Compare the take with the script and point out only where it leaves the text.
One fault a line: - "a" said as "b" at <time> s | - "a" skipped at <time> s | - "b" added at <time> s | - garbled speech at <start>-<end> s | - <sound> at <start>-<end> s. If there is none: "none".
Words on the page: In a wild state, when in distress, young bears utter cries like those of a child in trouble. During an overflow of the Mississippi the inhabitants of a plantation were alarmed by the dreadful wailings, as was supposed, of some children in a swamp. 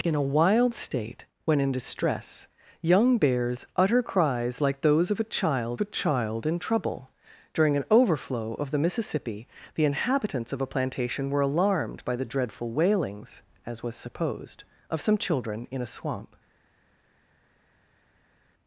- "a child" added at 5.8 s